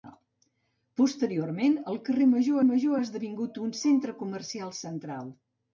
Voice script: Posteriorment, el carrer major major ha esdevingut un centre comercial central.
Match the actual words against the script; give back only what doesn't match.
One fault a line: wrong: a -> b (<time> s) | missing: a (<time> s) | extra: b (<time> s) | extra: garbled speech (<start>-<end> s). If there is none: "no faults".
no faults